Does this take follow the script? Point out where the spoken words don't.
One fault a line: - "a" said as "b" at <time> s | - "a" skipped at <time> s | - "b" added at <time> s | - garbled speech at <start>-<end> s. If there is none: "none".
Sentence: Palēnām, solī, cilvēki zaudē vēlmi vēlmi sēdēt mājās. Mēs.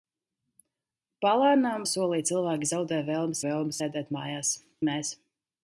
none